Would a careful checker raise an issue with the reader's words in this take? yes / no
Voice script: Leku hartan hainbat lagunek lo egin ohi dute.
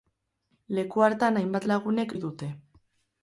yes